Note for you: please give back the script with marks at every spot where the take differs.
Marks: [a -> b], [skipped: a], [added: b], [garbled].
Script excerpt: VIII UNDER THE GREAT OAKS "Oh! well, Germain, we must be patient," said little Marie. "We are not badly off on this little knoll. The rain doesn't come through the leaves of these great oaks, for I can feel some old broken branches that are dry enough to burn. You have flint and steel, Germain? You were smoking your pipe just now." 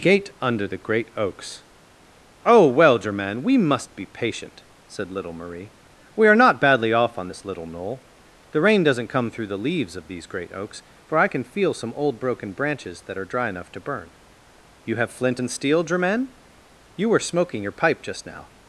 [VIII -> Gate] UNDER THE GREAT OAKS "Oh! well, Germain, we must be patient," said little Marie. "We are not badly off on this little knoll. The rain doesn't come through the leaves of these great oaks, for I can feel some old broken branches that are dry enough to burn. You have flint and steel, Germain? You were smoking your pipe just now."